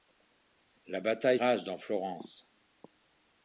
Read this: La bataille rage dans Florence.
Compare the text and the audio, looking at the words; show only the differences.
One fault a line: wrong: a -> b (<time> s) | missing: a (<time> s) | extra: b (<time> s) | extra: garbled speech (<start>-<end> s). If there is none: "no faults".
no faults